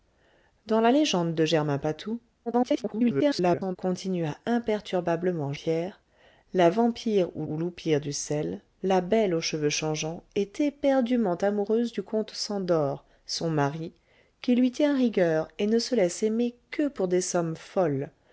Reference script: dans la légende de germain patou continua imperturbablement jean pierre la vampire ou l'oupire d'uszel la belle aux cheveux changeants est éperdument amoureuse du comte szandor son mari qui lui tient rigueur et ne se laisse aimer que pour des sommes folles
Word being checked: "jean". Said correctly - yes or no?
no